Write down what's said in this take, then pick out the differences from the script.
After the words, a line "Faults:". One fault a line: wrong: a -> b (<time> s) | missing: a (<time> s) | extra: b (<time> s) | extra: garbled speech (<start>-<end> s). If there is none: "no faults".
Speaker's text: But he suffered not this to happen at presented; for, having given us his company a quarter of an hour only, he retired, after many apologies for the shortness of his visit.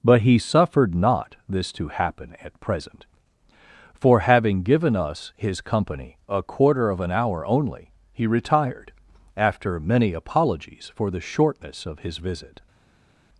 But he suffered not this to happen at present; for, having given us his company a quarter of an hour only, he retired, after many apologies for the shortness of his visit.
Faults:
wrong: presented -> present (2.6 s)